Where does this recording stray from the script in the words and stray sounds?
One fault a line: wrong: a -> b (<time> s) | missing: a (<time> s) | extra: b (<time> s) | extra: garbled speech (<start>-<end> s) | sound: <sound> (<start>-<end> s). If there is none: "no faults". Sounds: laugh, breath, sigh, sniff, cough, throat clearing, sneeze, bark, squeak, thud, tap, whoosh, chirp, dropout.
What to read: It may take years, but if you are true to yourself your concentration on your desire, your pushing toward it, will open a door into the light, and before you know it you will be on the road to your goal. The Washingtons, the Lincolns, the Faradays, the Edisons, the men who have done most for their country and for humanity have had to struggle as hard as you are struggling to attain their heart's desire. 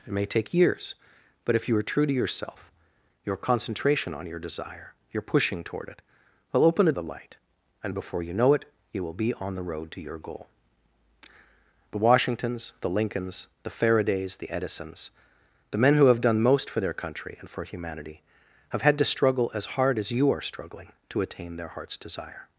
missing: door into (6.9 s)